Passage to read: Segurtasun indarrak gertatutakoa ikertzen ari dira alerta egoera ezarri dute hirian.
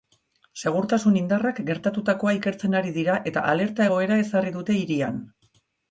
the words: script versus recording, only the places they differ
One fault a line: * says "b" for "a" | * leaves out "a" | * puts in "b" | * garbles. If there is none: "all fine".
* puts in "eta"